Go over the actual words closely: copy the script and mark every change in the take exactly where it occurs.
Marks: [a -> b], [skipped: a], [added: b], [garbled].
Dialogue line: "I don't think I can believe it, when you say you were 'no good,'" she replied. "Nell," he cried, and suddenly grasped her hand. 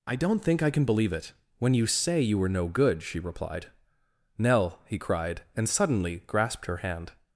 "I don't think I can believe it, when you say you were 'no good,'" she replied. "Nell," he cried, and suddenly grasped her hand.